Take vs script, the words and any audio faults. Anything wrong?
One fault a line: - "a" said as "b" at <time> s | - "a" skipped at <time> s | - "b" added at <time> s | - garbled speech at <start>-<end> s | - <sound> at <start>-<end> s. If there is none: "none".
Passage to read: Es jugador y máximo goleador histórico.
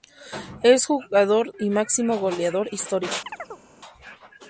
- chirp at 3.3-3.6 s